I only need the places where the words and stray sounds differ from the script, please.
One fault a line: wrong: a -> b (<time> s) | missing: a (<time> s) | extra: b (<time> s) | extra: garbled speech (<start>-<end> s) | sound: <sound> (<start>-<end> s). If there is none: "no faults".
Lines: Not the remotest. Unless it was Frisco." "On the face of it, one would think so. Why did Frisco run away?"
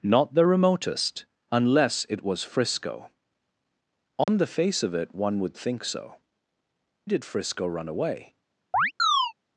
sound: dropout (4.2-4.3 s)
missing: Why (6.1 s)
sound: chirp (8.7-9.3 s)